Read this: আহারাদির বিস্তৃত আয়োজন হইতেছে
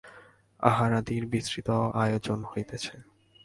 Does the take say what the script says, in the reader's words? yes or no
yes